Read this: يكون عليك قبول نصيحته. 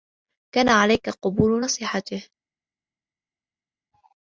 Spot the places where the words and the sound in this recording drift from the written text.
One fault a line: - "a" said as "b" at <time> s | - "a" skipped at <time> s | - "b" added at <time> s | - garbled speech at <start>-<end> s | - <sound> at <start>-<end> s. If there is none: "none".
- "يكون" said as "كان" at 0.5 s